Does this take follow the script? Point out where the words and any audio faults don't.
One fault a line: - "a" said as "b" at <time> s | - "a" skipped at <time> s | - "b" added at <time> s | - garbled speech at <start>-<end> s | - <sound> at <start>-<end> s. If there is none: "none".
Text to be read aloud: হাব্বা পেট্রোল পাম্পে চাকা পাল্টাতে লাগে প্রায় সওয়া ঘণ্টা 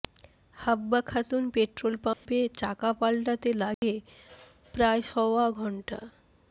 - "খাতুন" added at 1.0 s
- dropout at 2.1-2.3 s
- dropout at 3.7-3.8 s